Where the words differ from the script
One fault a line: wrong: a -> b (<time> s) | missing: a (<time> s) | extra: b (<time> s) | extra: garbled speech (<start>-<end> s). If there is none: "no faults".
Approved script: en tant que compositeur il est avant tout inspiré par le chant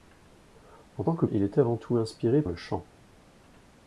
missing: compositeur (1.2 s)
missing: par (2.4 s)